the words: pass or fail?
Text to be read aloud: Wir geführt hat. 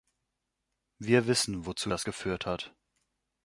fail